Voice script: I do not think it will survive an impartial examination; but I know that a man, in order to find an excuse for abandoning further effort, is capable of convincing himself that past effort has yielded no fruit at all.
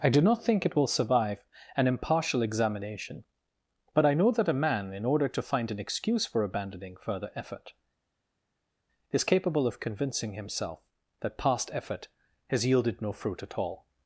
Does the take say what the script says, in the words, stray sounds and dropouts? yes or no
yes